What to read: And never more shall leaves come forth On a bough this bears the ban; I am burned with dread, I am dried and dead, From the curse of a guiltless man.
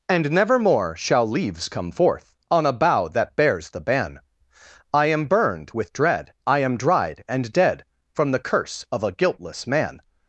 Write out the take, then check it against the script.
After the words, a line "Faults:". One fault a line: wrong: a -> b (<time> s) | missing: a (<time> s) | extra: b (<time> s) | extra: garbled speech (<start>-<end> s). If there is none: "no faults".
And never more shall leaves come forth On a bough that bears the ban; I am burned with dread, I am dried and dead, From the curse of a guiltless man.
Faults:
wrong: this -> that (3.1 s)